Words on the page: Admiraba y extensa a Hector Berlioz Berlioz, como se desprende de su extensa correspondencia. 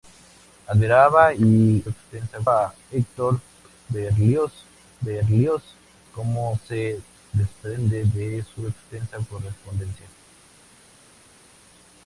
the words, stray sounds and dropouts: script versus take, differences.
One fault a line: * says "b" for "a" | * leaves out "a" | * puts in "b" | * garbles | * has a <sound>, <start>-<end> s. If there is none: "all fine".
all fine